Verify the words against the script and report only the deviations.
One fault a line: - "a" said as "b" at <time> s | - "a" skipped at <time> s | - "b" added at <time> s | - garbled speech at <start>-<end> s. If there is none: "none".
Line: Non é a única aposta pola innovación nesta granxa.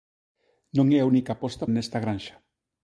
- "pola innovación" skipped at 1.6 s